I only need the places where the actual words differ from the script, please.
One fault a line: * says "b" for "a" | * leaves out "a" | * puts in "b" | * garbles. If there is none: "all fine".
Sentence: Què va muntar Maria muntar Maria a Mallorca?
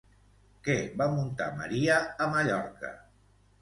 * leaves out "muntar Maria"